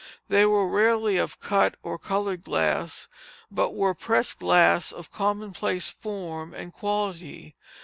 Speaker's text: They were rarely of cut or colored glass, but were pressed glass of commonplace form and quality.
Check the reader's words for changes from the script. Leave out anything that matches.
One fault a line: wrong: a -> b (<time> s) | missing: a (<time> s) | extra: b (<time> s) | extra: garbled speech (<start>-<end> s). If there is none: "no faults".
no faults